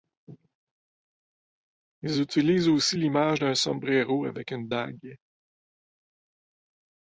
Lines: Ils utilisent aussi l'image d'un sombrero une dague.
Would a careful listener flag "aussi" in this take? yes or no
no